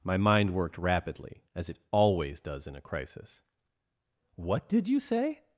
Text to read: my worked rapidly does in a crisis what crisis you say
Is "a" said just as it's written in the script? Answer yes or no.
yes